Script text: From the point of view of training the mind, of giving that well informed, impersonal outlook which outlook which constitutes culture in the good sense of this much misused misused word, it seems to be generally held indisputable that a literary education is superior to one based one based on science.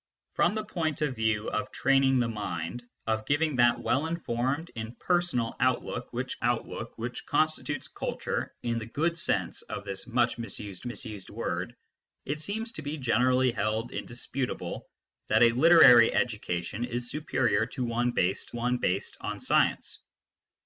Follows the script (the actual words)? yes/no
yes